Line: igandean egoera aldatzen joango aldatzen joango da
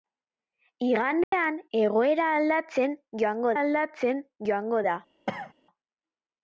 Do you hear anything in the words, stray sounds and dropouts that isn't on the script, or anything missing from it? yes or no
yes